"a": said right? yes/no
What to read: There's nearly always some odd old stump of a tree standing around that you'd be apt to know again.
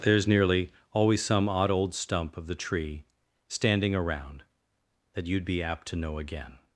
no